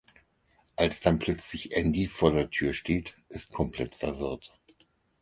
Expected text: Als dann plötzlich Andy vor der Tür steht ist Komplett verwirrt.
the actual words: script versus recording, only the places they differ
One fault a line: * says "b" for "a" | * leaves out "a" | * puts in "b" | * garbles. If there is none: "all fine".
all fine